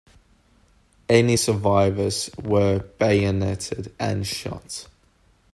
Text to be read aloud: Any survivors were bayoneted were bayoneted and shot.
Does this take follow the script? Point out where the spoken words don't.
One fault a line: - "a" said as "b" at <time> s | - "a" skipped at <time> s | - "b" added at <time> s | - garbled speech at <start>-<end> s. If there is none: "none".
- "were bayoneted" skipped at 3.9 s